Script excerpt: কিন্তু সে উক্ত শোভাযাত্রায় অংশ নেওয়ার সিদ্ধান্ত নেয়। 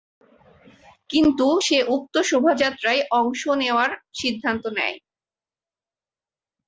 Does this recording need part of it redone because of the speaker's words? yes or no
no